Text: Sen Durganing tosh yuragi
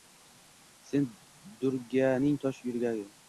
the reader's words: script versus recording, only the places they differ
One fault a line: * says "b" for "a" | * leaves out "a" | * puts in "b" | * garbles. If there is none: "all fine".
all fine